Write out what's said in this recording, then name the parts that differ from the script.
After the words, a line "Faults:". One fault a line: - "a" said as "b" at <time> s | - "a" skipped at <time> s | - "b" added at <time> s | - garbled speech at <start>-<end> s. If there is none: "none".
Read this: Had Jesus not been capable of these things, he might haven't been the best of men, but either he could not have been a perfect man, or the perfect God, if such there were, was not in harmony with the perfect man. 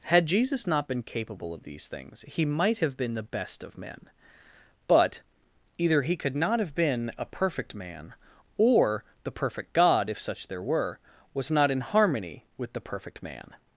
Had Jesus not been capable of these things, he might have been the best of men, but either he could not have been a perfect man, or the perfect God, if such there were, was not in harmony with the perfect man.
Faults:
- "haven't" said as "have" at 2.8 s